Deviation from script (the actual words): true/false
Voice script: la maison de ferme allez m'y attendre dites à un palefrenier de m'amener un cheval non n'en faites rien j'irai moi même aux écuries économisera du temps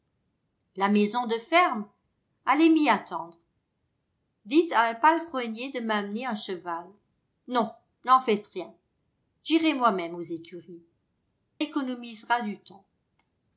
false